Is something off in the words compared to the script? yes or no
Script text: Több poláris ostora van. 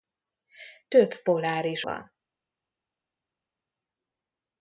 yes